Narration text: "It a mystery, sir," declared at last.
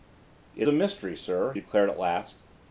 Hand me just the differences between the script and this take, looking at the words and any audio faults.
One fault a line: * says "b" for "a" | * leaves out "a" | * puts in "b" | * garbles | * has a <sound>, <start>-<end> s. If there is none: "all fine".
all fine